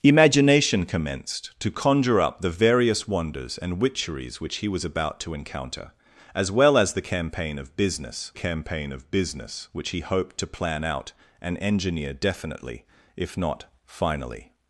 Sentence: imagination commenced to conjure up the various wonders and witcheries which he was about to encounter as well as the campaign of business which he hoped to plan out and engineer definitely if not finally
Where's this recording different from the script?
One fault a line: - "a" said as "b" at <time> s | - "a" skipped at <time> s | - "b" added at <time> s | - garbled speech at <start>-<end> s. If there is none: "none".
- "campaign of business" added at 8.3 s